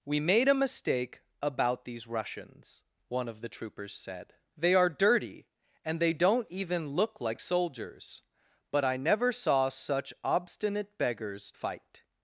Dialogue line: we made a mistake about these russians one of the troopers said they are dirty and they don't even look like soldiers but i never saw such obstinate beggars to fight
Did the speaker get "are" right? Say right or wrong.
right